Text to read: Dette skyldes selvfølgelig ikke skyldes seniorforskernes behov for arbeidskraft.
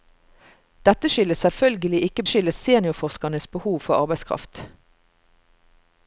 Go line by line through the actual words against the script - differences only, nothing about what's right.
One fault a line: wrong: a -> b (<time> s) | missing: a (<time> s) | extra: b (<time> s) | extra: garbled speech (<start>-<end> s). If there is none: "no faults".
no faults